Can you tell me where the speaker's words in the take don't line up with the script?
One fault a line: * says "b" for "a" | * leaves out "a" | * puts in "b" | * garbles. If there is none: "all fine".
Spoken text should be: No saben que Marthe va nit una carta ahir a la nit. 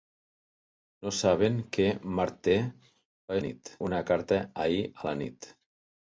all fine